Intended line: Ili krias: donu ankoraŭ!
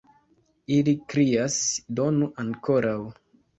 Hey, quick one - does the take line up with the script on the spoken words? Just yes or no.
yes